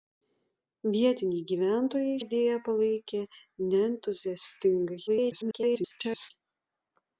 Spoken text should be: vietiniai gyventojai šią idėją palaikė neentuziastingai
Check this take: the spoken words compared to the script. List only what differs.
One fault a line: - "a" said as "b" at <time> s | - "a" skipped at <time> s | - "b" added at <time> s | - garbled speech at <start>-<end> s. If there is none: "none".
- "šią" skipped at 2.1 s
- garbled speech at 5.1-6.3 s